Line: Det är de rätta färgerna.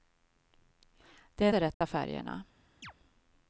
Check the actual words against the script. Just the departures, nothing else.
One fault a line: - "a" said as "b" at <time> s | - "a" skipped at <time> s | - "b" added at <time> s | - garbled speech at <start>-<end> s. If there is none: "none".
none